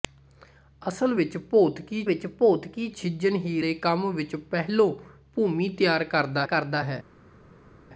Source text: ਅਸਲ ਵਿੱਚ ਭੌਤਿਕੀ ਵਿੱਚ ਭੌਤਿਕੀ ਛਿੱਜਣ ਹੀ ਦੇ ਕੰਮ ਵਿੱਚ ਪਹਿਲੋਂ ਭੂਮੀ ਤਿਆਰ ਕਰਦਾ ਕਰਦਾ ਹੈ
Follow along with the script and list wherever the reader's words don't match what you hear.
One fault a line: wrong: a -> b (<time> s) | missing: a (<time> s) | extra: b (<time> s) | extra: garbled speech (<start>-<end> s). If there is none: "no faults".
no faults